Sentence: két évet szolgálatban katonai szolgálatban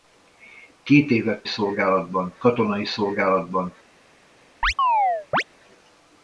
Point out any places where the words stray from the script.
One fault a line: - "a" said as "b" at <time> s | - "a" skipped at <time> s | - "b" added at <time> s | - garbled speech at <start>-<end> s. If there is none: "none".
none